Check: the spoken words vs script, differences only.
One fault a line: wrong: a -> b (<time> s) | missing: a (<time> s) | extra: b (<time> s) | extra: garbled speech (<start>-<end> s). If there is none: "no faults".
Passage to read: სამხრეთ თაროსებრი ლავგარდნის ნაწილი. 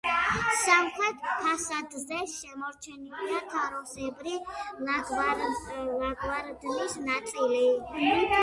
extra: ფასადზე შემორჩენილია (1.4 s)